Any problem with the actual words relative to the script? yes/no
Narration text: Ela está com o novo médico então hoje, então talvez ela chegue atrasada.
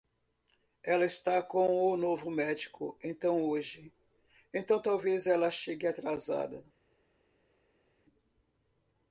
no